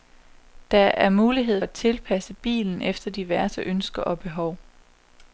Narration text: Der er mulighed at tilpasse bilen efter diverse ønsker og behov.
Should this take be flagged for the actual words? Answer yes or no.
no